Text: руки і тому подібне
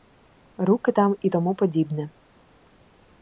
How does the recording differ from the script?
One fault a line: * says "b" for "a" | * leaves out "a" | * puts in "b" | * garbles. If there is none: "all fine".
* puts in "там"